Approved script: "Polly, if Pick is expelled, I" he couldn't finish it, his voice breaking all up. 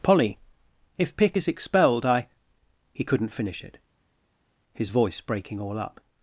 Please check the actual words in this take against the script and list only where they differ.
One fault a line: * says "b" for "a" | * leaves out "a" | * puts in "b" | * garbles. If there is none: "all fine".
all fine